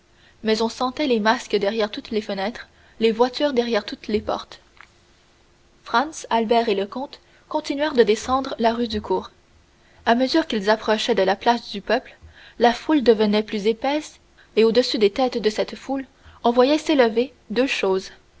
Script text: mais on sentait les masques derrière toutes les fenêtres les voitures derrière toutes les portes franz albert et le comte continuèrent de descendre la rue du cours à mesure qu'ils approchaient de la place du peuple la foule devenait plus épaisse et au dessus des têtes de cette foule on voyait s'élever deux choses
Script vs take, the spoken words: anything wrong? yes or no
no